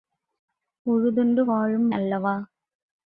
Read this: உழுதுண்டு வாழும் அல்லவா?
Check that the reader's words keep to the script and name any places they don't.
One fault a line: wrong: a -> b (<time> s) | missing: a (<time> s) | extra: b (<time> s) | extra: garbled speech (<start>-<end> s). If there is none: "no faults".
no faults